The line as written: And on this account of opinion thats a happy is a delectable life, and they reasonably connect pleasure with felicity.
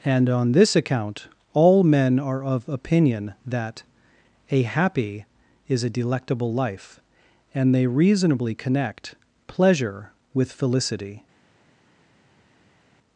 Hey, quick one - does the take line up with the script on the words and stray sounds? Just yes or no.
no